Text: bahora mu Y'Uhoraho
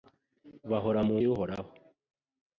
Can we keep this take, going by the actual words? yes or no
yes